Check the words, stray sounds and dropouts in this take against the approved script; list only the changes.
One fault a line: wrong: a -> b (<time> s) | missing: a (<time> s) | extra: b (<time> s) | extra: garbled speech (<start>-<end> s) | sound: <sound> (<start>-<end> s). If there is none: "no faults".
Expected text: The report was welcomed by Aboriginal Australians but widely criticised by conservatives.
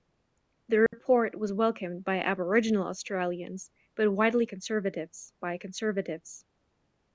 sound: dropout (0.9-0.9 s)
wrong: criticised -> conservatives (4.5 s)